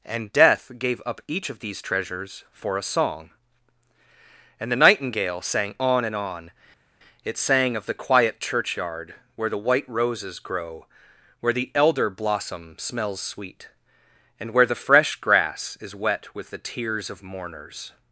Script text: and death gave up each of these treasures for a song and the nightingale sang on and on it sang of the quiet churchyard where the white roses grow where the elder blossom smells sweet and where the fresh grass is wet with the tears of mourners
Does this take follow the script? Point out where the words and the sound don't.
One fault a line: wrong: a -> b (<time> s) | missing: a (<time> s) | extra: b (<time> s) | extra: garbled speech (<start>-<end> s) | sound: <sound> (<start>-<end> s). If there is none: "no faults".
no faults